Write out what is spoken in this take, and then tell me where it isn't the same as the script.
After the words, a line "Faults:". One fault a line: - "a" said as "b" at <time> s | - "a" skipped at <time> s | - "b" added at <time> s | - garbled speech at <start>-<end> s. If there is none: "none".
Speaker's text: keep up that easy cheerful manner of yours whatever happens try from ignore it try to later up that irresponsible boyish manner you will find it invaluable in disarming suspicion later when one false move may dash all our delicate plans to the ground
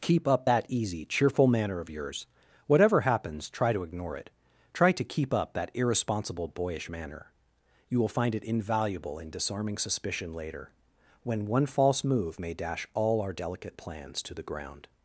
keep up that easy cheerful manner of yours whatever happens try to ignore it try to keep up that irresponsible boyish manner you will find it invaluable in disarming suspicion later when one false move may dash all our delicate plans to the ground
Faults:
- "from" said as "to" at 3.7 s
- "later" said as "keep" at 5.0 s